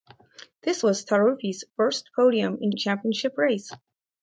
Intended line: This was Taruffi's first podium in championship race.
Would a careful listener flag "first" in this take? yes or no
no